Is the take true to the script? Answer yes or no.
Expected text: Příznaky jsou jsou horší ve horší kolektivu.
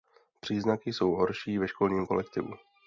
no